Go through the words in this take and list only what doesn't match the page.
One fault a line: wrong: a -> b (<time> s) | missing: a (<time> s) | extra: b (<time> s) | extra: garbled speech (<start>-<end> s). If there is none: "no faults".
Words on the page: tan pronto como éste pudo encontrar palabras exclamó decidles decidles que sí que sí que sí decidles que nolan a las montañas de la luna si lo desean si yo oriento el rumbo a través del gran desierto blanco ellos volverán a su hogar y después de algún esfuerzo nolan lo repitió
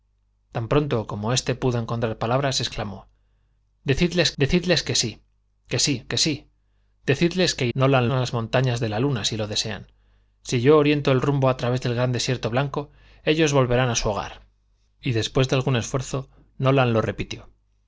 no faults